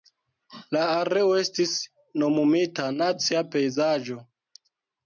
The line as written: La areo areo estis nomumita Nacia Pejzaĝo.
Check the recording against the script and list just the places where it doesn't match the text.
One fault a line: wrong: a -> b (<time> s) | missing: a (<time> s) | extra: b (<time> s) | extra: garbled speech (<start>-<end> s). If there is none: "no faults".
missing: areo (1.4 s)